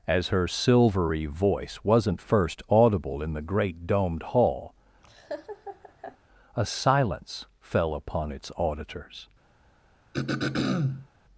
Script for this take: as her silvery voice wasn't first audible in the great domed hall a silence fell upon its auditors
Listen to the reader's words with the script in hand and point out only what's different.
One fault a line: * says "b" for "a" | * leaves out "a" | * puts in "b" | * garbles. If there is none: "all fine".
all fine